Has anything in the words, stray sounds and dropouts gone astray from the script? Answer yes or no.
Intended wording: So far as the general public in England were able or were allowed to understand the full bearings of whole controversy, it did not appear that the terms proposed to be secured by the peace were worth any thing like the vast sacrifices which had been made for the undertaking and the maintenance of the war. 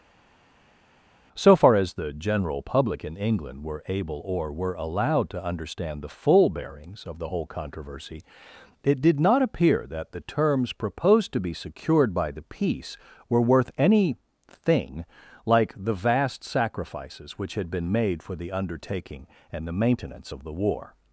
yes